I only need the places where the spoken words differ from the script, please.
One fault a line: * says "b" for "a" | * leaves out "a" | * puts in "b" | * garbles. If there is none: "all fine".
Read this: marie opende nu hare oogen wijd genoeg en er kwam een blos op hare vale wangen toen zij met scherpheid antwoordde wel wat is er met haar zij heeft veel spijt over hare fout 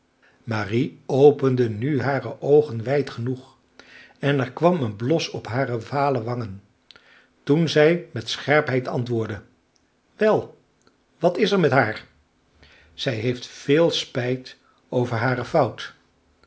all fine